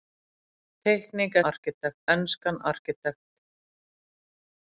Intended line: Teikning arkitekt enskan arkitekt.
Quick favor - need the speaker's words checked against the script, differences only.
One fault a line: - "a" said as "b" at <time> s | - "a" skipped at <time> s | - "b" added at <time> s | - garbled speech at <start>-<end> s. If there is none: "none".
none